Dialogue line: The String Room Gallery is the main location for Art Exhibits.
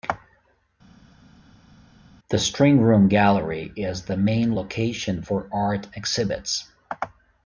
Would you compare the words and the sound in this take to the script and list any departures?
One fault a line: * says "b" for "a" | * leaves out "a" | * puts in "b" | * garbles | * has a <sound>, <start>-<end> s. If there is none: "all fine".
all fine